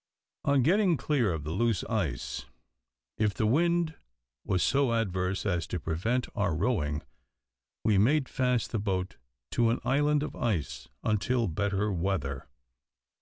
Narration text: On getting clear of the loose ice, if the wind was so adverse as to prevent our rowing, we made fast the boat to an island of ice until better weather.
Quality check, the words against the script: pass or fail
pass